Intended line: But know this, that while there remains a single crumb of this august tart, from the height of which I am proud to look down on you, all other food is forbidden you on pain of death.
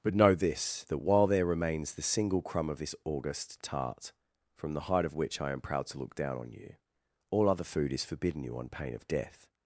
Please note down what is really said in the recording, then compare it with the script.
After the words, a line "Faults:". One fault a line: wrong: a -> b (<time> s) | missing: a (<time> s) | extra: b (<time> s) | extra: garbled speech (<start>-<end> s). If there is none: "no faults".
But know this, that while there remains the single crumb of this august tart, from the height of which I am proud to look down on you, all other food is forbidden you on pain of death.
Faults:
wrong: a -> the (1.9 s)